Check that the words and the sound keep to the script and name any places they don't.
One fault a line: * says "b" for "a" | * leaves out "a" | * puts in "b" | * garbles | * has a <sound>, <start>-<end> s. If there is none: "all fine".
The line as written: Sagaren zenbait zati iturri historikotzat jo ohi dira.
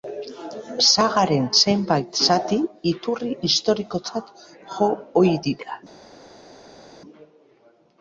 all fine